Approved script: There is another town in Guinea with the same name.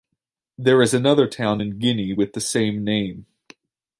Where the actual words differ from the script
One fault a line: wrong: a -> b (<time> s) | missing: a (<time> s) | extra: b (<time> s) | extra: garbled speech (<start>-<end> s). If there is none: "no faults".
no faults